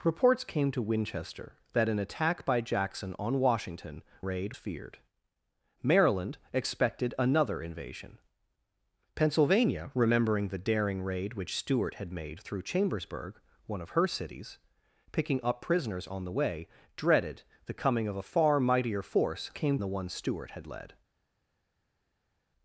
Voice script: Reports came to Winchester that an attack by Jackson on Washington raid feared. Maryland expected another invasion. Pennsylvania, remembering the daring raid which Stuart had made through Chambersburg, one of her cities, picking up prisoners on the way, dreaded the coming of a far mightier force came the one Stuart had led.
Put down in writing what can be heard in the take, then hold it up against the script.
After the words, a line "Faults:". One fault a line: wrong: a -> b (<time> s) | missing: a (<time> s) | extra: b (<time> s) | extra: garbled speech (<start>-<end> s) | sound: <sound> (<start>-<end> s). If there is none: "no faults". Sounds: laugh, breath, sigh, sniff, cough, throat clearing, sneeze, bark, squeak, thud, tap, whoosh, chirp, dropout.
Reports came to Winchester that an attack by Jackson on Washington raid feared. Maryland expected another invasion. Pennsylvania, remembering the daring raid which Stuart had made through Chambersburg, one of her cities, picking up prisoners on the way, dreaded the coming of a far mightier force came the one Stuart had led.
Faults:
no faults